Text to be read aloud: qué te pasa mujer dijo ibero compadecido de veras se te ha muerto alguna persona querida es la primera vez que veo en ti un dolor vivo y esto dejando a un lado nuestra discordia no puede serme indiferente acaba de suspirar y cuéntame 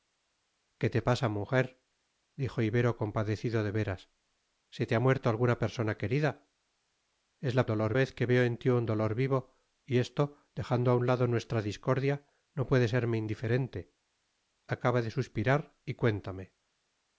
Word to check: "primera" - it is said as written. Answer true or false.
false